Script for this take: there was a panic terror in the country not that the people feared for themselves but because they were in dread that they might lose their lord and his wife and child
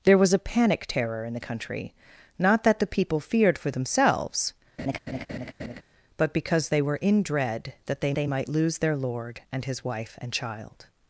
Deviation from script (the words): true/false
true